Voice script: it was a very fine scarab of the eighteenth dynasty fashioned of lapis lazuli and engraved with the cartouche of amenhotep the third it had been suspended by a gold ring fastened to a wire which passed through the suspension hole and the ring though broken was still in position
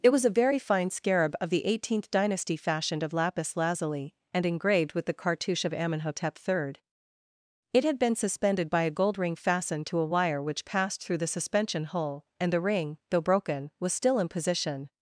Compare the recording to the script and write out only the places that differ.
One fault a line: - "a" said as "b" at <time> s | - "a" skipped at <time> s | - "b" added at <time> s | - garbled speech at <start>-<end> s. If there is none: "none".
none